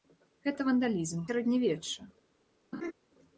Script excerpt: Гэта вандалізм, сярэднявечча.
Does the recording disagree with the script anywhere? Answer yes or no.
no